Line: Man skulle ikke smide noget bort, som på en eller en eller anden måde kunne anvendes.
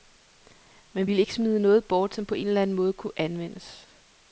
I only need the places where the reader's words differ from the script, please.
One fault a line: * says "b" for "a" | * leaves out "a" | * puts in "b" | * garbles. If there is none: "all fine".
* says "ville" for "skulle"
* leaves out "en eller"